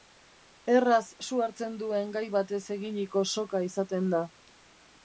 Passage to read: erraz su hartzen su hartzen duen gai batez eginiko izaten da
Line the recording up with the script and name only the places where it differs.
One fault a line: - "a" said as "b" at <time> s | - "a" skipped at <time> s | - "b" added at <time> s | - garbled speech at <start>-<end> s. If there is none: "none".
- "su hartzen" skipped at 1.8 s
- "soka" added at 3.4 s